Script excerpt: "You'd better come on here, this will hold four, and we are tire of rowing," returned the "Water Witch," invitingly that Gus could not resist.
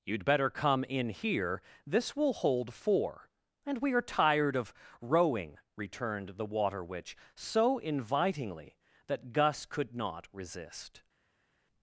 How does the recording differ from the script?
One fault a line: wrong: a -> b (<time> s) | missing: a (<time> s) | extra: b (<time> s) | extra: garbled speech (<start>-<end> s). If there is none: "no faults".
wrong: on -> in (0.8 s)
wrong: tire -> tired (4.0 s)
extra: so (7.3 s)